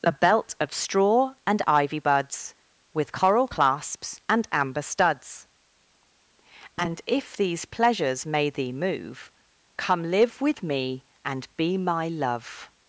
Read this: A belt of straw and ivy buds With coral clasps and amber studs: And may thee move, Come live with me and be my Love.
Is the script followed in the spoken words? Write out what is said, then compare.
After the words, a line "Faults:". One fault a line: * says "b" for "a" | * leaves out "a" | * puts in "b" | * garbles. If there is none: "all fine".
A belt of straw and ivy buds With coral clasps and amber studs: And if these pleasures may thee move, Come live with me and be my Love.
Faults:
* puts in "if these pleasures"